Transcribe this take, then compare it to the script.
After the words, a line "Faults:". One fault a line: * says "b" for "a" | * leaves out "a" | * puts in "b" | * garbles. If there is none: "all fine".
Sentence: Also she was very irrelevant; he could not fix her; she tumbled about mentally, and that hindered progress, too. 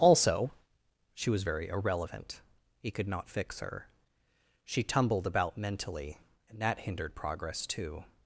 Also she was very irrelevant; he could not fix her; she tumbled about mentally, and that hindered progress, too.
Faults:
all fine